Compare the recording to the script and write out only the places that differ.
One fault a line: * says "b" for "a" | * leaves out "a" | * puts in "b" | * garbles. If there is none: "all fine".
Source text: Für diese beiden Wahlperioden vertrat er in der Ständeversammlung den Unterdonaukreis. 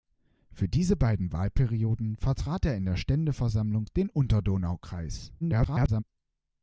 * garbles